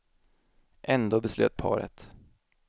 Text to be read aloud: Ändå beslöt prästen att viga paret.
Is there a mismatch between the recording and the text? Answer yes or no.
yes